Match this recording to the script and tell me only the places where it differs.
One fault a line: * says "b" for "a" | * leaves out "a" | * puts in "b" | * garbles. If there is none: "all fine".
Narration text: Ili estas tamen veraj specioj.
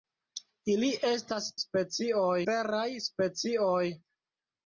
* says "specioj" for "tamen"